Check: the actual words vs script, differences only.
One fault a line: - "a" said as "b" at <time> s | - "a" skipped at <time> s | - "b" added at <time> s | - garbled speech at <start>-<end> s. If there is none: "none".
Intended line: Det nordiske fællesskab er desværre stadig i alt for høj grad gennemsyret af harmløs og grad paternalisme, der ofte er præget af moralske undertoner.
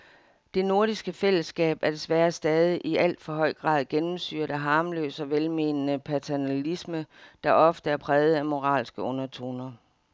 - "grad" said as "velmenende" at 5.3 s